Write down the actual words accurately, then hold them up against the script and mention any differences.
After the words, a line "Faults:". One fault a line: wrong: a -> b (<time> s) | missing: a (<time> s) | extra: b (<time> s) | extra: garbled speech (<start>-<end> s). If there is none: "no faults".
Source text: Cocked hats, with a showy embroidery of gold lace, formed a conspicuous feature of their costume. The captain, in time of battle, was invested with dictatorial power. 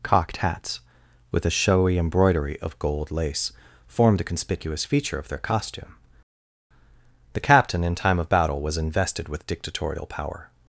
Cocked hats, with a showy embroidery of gold lace, formed a conspicuous feature of their costume. The captain, in time of battle, was invested with dictatorial power.
Faults:
no faults